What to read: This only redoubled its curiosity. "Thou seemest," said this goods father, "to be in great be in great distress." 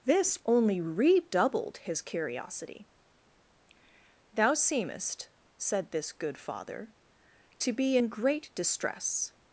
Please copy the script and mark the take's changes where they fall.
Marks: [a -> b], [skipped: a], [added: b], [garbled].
This only redoubled [its -> his] curiosity. "Thou seemest," said this [goods -> good] father, "to be in great [skipped: be in great] distress."